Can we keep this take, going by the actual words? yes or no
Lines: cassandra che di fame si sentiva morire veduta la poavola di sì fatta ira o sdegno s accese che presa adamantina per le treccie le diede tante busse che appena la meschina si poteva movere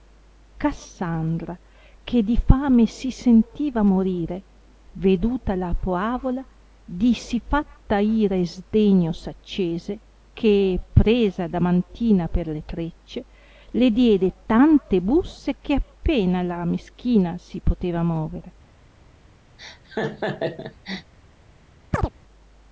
no